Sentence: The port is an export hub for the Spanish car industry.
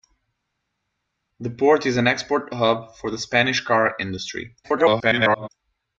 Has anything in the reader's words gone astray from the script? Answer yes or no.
yes